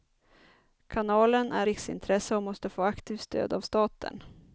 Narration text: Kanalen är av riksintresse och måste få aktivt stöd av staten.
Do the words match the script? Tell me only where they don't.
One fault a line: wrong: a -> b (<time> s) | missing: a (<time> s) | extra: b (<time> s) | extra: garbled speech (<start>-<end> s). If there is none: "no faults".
missing: av (1.7 s)